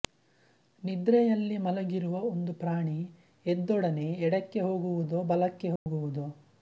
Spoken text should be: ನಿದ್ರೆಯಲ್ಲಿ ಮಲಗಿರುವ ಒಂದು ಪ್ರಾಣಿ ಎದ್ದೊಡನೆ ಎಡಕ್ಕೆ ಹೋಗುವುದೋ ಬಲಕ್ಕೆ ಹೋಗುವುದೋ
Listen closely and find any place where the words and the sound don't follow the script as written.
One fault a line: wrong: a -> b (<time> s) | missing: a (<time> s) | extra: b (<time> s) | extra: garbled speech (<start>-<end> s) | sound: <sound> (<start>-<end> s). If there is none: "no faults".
sound: dropout (5.8-5.9 s)